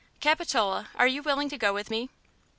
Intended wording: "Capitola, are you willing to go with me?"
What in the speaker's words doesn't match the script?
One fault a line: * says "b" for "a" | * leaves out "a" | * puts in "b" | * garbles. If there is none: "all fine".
all fine